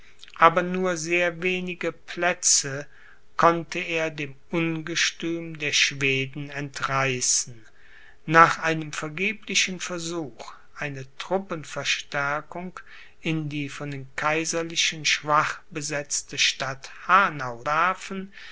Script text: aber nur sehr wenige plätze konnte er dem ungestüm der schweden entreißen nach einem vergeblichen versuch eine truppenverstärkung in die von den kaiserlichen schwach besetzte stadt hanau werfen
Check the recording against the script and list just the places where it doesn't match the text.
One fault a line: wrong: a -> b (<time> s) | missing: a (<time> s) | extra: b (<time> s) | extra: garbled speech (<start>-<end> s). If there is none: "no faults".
no faults